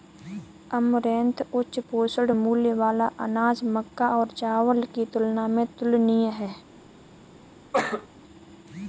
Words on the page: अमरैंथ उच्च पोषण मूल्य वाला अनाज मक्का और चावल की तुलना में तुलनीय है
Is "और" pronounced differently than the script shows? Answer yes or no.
no